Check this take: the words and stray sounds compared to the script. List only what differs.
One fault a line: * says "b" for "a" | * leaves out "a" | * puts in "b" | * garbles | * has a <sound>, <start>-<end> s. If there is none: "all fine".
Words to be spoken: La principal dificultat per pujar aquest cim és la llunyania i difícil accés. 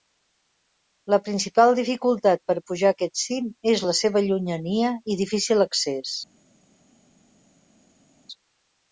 * puts in "seva"